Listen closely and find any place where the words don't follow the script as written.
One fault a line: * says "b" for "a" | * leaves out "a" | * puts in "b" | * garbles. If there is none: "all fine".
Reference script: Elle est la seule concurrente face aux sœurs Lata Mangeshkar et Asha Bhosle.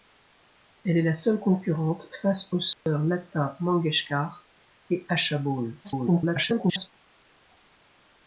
* garbles